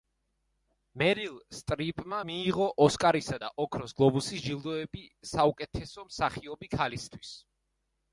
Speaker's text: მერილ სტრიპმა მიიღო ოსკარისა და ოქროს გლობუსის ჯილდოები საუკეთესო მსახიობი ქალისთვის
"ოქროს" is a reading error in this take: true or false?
false